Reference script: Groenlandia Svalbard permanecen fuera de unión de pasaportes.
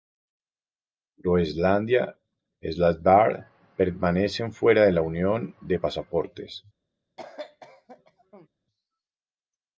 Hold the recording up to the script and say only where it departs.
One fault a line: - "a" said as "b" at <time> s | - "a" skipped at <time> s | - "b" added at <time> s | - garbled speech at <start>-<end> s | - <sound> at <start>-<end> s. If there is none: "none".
- "y" added at 2.6 s
- "la" added at 4.9 s
- cough at 7.2-8.5 s